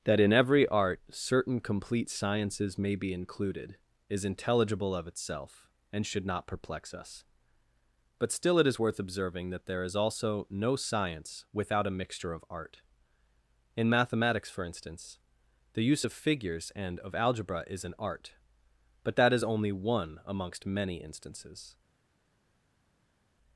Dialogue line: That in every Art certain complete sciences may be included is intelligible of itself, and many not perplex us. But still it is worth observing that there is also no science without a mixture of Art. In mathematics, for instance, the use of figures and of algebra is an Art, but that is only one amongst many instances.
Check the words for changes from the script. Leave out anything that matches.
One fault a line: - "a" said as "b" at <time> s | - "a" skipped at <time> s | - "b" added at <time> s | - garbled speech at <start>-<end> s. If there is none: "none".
- "many" said as "should" at 6.0 s